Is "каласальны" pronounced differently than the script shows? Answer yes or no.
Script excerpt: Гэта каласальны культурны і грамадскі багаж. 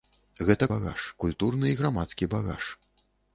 yes